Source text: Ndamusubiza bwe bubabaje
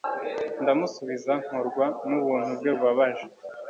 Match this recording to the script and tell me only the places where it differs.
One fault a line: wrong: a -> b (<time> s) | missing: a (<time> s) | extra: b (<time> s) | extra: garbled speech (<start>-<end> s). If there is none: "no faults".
extra: nkorwa nubuntu (1.4 s)